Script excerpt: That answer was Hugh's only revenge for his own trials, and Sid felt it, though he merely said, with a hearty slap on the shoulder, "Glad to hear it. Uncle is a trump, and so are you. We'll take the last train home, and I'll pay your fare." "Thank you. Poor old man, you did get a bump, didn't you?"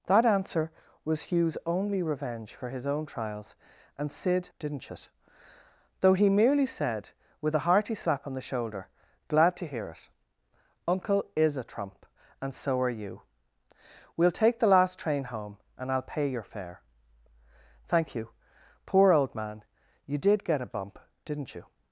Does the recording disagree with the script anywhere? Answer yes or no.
yes